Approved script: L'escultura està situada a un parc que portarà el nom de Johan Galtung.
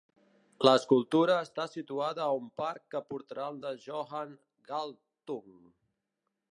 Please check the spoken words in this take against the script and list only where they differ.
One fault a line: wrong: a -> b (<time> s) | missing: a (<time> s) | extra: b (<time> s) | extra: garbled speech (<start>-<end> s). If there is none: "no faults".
missing: nom (3.6 s)